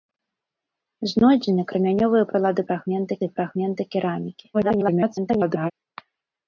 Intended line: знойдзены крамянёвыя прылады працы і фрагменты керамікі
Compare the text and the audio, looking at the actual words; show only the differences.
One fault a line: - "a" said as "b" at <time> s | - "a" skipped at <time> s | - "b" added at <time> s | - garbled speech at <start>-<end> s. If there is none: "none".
- "працы" said as "фрагменты" at 2.7 s
- garbled speech at 4.5-5.7 s